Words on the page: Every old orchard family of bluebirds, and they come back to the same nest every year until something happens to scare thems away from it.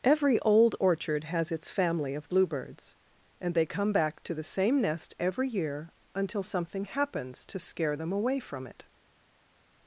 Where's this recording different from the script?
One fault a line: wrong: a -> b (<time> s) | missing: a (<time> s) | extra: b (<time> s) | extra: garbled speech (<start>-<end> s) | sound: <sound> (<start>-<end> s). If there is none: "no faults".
extra: has its (1.2 s)
wrong: thems -> them (8.0 s)